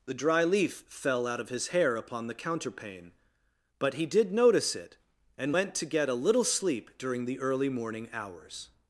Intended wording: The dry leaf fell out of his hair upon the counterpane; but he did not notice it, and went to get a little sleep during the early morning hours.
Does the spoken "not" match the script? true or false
false